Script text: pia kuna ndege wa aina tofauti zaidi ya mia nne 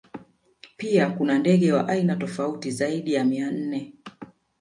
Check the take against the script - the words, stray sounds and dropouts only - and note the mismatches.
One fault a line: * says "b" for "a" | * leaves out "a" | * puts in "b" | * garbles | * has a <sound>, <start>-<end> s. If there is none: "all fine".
all fine